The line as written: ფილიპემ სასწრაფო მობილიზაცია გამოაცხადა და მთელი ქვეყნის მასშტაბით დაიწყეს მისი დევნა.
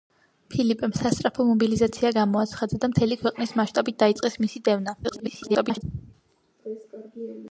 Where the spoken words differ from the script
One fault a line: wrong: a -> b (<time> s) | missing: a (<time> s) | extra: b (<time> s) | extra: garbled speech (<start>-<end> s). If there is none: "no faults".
extra: garbled speech (5.0-5.8 s)